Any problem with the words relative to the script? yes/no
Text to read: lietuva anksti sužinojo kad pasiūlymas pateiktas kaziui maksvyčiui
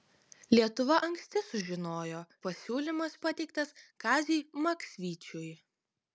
yes